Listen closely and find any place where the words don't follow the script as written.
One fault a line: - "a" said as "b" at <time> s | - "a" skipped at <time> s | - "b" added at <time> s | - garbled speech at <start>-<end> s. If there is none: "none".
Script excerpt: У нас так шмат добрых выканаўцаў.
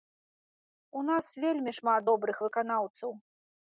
- "так" said as "вельмі" at 1.4 s